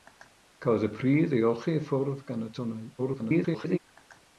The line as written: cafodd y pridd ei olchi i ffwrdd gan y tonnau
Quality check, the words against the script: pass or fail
fail